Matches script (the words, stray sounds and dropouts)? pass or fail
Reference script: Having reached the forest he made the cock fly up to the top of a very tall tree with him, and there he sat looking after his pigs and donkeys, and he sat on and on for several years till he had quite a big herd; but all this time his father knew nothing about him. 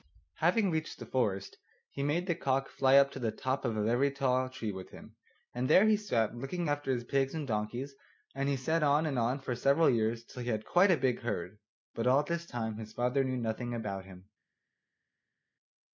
pass